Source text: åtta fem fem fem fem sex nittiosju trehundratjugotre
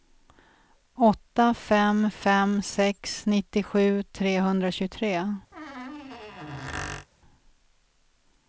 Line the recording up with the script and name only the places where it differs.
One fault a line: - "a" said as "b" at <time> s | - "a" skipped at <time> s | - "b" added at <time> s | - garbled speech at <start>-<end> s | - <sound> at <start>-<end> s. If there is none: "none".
- "fem fem" skipped at 2.6 s
- squeak at 5.5-7.1 s